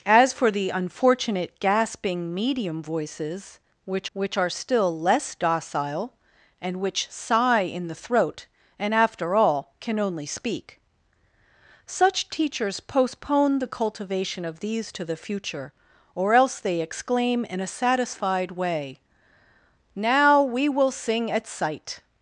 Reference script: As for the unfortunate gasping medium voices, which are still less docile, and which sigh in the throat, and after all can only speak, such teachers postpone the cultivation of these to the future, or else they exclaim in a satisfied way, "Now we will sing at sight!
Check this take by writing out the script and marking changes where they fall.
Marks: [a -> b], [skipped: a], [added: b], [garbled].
As for the unfortunate gasping medium voices, which [added: which] are still less docile, and which sigh in the throat, and after all can only speak, such teachers postpone the cultivation of these to the future, or else they exclaim in a satisfied way, "Now we will sing at sight!